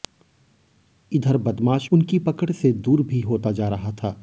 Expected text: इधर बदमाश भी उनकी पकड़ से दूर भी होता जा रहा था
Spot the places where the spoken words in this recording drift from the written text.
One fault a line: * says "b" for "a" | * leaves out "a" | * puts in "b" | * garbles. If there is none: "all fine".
* leaves out "भी"